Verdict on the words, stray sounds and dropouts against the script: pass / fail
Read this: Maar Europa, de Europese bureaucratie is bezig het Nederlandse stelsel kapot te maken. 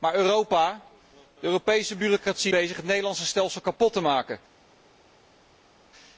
fail